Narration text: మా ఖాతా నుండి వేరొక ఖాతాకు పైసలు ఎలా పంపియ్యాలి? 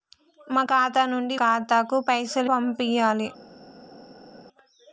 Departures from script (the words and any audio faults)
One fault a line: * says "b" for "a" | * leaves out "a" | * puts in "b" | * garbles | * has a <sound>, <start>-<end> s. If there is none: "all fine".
* leaves out "వేరొక"
* leaves out "ఎలా"